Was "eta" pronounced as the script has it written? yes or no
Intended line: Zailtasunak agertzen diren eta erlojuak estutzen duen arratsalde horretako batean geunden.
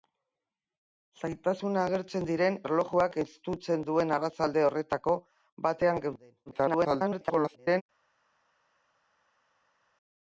no